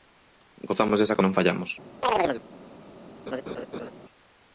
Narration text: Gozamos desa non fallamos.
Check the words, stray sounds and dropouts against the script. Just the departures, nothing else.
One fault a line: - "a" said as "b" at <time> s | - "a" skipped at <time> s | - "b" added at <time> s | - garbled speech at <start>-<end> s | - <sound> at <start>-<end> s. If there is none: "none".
- chirp at 2.0-2.4 s
- laugh at 3.3-3.9 s